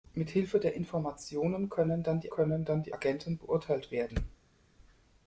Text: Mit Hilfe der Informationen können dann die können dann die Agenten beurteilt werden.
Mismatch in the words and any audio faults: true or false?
false